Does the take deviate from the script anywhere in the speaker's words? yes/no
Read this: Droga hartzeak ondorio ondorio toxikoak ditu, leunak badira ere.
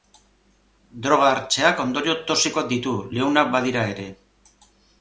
yes